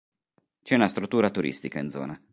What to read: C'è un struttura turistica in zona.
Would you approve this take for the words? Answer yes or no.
no